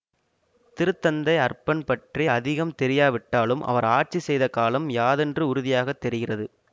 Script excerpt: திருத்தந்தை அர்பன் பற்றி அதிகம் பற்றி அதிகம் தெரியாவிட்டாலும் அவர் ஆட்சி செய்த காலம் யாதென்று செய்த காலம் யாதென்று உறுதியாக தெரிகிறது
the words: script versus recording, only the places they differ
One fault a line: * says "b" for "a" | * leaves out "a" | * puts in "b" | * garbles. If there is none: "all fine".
* leaves out "பற்றி அதிகம்"
* leaves out "செய்த காலம் யாதென்று"